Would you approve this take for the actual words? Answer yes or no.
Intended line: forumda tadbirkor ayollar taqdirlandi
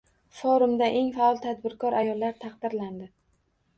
no